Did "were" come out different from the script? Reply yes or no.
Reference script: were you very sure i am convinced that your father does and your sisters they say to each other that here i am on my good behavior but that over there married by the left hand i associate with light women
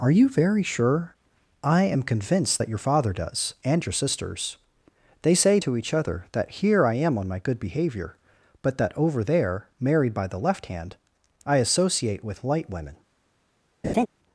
yes